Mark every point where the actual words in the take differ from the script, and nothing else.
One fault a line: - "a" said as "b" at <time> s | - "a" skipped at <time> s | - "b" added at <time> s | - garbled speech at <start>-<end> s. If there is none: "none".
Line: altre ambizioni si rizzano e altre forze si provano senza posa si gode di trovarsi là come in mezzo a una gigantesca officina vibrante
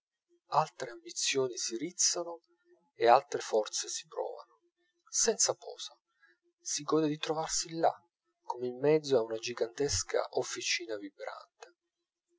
none